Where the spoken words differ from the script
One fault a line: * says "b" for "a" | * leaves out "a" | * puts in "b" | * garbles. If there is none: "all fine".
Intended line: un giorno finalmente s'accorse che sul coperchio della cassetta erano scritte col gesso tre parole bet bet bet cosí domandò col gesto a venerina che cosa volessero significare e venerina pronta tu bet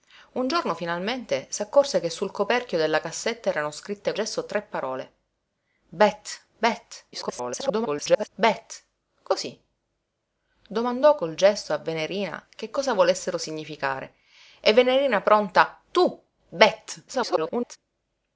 * leaves out "col"
* garbles
* garbles